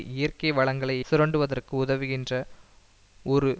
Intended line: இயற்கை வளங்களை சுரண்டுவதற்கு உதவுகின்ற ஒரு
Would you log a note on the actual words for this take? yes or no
no